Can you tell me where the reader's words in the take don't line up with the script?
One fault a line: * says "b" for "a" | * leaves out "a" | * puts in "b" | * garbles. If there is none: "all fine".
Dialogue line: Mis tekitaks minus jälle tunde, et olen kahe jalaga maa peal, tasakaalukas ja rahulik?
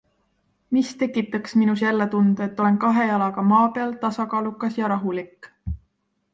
all fine